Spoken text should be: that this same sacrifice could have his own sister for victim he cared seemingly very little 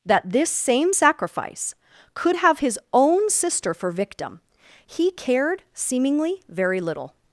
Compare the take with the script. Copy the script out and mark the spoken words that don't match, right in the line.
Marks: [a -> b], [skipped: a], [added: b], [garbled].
that this same sacrifice could have his own sister for victim he cared seemingly very little